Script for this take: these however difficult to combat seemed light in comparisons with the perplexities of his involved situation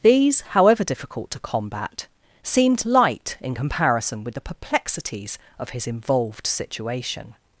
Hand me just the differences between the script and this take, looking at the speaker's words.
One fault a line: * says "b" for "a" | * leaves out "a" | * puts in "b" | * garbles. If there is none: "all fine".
* says "comparison" for "comparisons"